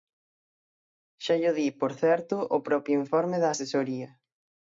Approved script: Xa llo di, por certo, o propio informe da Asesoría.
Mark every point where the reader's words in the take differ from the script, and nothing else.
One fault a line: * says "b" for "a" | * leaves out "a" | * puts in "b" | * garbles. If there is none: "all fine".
all fine